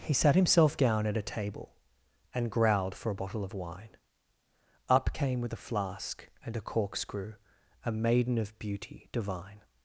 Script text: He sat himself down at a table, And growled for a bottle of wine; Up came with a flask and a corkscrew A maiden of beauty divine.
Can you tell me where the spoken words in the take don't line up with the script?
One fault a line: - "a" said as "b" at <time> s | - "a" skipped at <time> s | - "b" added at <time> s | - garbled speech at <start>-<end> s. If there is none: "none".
none